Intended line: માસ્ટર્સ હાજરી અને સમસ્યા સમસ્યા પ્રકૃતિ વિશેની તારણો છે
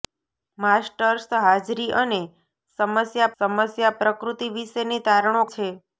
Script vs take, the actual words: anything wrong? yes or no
no